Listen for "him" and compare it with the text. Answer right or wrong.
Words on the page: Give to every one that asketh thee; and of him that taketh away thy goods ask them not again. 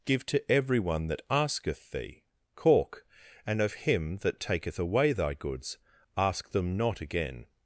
right